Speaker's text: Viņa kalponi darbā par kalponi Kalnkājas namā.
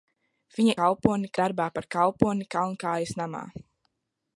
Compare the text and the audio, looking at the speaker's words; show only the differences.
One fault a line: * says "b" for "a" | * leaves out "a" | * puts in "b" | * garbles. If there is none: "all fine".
all fine